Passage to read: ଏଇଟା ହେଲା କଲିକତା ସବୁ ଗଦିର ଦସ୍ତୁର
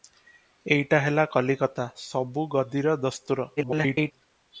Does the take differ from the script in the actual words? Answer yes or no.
yes